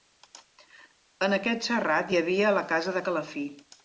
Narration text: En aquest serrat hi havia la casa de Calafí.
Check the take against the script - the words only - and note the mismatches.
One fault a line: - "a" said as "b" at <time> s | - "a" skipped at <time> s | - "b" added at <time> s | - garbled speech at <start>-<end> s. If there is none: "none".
none